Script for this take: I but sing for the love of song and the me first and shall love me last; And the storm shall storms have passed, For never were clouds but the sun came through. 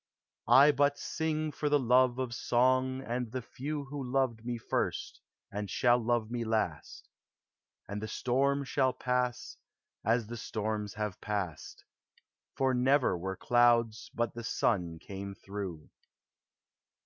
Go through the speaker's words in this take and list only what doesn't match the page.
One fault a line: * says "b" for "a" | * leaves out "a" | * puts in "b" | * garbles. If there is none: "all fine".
* puts in "few Who loved"
* puts in "pass as the"